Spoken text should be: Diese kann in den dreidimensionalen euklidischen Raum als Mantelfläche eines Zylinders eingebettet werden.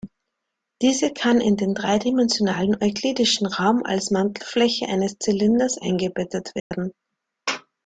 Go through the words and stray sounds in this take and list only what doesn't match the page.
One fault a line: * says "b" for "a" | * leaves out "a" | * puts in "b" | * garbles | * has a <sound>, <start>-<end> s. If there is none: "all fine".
* has a dropout, 6.6-6.7 s